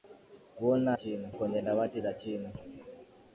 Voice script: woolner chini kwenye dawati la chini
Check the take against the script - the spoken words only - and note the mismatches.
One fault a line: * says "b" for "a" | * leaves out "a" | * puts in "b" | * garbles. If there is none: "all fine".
all fine